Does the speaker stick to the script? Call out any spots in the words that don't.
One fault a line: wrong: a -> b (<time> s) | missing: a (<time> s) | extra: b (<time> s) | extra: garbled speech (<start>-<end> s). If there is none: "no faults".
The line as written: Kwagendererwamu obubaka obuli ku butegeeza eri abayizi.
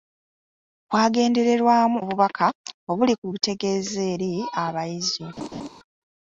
no faults